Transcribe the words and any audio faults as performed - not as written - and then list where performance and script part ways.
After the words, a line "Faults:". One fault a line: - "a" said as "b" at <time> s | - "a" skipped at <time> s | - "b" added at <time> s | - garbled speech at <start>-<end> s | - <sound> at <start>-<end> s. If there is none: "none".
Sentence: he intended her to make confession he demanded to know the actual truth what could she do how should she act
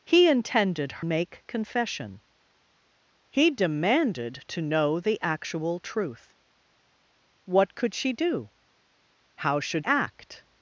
he intended make confession he demanded to know the actual truth what could she do how should act
Faults:
- "her to" skipped at 1.0 s
- "she" skipped at 9.9 s